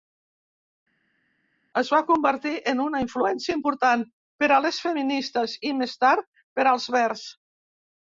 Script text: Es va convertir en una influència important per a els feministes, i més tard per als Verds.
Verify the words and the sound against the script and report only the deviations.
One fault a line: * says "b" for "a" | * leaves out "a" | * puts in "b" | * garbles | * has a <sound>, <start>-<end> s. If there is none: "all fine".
* says "les" for "els"